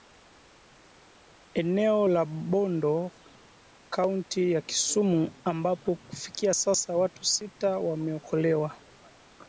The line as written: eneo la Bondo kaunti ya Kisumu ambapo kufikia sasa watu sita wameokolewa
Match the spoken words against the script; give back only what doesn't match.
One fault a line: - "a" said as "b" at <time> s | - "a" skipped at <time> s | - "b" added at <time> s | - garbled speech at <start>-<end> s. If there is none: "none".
none